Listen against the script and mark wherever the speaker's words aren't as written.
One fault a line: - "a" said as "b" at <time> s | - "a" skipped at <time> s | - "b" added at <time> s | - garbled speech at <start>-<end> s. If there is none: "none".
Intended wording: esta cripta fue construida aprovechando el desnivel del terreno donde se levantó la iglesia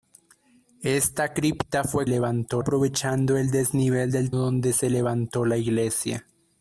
- "construida" said as "levantó" at 2.1 s
- "terreno" skipped at 4.3 s